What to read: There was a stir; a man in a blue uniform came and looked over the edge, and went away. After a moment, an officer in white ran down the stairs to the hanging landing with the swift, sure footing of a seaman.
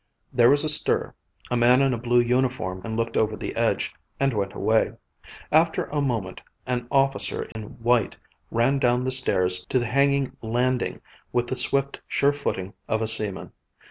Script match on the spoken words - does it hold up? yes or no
no